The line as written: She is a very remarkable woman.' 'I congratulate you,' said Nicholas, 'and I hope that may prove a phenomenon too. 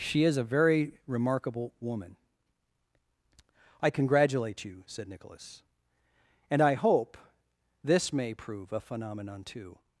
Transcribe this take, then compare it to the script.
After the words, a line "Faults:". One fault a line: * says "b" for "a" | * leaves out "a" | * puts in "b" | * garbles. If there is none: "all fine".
She is a very remarkable woman.' 'I congratulate you,' said Nicholas, 'and I hope this may prove a phenomenon too.
Faults:
* says "this" for "that"